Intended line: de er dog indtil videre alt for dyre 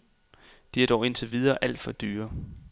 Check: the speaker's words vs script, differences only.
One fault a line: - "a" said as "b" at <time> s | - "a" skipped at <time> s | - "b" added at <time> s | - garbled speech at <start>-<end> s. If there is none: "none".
none